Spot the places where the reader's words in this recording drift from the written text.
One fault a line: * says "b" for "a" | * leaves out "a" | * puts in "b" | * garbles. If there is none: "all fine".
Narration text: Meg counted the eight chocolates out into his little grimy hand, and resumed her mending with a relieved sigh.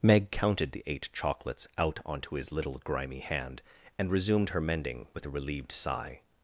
* says "onto" for "into"